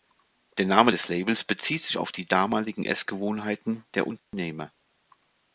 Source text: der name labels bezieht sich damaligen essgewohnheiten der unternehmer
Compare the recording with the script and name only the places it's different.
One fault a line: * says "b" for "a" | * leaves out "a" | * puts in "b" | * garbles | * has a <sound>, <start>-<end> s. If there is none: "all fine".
* puts in "des"
* puts in "auf die"
* has a dropout, 4.2-4.3 s